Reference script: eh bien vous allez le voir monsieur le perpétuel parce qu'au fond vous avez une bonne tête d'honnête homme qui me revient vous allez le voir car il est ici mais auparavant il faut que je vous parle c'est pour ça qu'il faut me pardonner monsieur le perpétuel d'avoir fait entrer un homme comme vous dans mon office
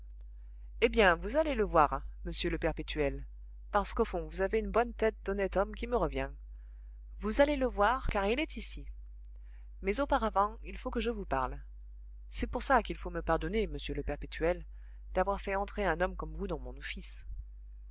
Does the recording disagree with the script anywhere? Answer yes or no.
no